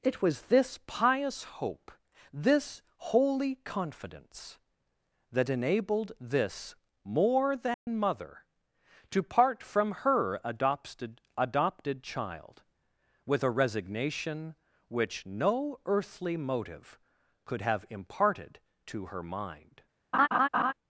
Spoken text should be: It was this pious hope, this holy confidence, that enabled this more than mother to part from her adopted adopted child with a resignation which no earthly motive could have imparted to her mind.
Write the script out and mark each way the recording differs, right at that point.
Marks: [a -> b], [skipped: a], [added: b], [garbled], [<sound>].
It was this pious hope, this holy confidence, that enabled this more than [dropout] mother to part from her adopted adopted child with a resignation which no earthly motive could have imparted to her mind. [laugh]